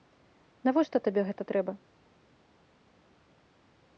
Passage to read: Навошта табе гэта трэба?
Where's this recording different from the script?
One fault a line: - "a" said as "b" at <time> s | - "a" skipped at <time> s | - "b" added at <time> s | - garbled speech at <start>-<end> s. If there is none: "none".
none